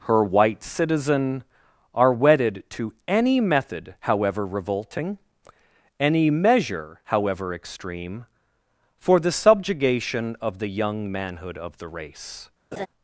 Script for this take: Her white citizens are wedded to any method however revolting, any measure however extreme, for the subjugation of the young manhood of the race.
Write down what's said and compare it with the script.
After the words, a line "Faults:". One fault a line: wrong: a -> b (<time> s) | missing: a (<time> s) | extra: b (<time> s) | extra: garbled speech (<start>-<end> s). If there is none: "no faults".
Her white citizen are wedded to any method however revolting, any measure however extreme, for the subjugation of the young manhood of the race.
Faults:
wrong: citizens -> citizen (0.6 s)